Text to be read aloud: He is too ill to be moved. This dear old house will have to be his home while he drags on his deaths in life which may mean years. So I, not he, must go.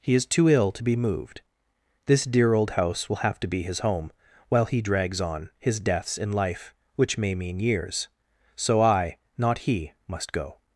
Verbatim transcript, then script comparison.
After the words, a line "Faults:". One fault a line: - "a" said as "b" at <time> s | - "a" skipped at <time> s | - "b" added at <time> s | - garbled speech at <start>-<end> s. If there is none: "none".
He is too ill to be moved. This dear old house will have to be his home while he drags on his deaths in life which may mean years. So I, not he, must go.
Faults:
none